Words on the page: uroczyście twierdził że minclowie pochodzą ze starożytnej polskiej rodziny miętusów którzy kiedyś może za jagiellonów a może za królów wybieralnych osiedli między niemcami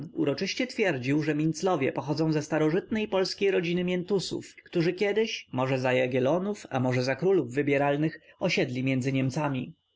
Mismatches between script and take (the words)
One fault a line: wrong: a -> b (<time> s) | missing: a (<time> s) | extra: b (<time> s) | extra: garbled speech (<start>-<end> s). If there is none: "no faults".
no faults